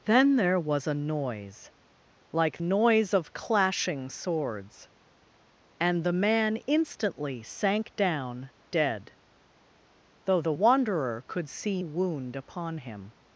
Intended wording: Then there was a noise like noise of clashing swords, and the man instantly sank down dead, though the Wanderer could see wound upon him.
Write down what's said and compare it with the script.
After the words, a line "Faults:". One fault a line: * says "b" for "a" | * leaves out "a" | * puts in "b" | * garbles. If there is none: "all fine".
Then there was a noise like noise of clashing swords, and the man instantly sank down dead, though the Wanderer could see wound upon him.
Faults:
all fine